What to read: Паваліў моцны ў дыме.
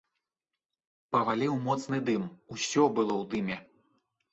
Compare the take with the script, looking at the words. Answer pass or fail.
fail